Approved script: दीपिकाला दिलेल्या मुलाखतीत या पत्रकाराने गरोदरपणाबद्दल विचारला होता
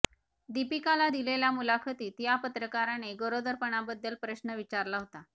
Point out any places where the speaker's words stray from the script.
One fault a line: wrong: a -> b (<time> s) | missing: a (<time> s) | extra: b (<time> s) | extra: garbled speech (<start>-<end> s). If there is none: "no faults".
extra: प्रश्न (4.2 s)